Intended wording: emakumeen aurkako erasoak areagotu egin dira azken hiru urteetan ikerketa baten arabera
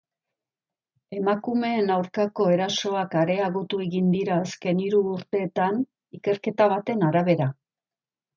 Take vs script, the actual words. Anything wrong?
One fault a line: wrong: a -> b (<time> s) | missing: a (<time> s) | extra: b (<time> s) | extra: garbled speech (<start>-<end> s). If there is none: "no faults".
no faults